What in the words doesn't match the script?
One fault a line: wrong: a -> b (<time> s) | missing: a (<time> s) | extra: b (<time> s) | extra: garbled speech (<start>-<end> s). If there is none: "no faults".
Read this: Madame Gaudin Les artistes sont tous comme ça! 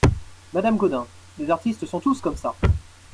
no faults